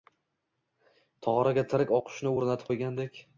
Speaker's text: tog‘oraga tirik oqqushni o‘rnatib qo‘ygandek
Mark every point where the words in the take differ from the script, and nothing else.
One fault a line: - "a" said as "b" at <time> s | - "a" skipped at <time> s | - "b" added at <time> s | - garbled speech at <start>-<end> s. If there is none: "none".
none